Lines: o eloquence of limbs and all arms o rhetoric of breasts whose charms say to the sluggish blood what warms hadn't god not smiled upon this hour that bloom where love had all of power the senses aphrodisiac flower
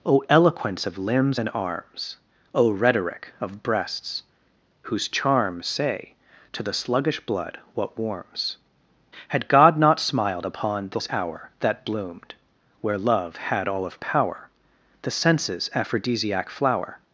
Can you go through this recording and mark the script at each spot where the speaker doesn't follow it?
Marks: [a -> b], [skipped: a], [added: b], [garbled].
o eloquence of limbs and [skipped: all] arms o rhetoric of breasts whose charms say to the sluggish blood what warms [hadn't -> had] god not smiled upon this hour that [bloom -> bloomed] where love had all of power the senses aphrodisiac flower